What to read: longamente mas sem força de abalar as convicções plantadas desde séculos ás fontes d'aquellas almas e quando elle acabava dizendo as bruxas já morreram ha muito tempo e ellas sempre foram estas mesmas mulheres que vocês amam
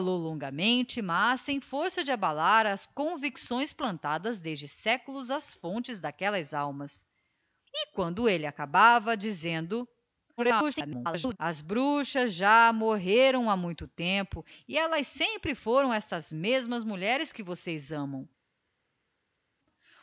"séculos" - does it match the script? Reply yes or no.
yes